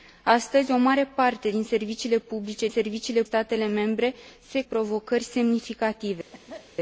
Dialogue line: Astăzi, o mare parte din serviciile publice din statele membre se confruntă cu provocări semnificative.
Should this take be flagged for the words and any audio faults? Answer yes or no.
yes